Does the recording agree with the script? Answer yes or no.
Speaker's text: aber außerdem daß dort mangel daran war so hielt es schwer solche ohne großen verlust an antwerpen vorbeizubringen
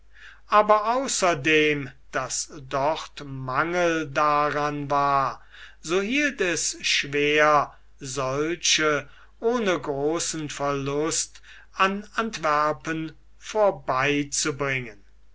yes